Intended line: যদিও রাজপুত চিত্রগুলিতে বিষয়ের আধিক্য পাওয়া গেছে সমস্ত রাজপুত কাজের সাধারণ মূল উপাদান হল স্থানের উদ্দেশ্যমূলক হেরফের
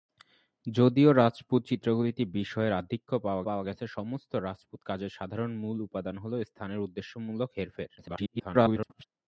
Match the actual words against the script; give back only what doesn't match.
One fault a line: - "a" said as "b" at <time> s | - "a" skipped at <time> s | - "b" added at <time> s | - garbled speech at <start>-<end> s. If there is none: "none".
- "পাওয়া" added at 3.5 s
- garbled speech at 8.0-9.1 s